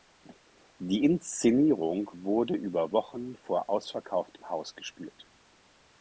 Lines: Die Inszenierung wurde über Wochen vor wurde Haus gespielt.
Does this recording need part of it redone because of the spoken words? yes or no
yes